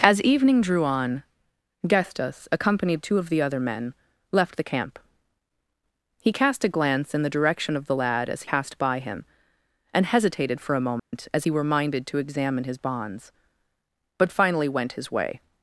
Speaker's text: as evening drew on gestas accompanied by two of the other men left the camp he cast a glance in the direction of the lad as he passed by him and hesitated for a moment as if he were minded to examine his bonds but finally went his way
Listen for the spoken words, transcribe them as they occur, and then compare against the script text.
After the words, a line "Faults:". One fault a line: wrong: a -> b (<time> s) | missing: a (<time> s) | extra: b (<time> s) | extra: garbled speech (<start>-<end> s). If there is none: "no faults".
as evening drew on gestas accompanied two of the other men left the camp he cast a glance in the direction of the lad as passed by him and hesitated for a moment as he were minded to examine his bonds but finally went his way
Faults:
missing: by (3.0 s)
missing: he (8.5 s)
missing: if (11.5 s)